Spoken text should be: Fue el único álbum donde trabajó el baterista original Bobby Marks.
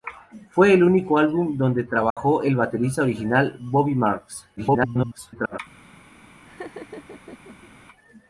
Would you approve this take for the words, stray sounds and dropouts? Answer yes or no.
no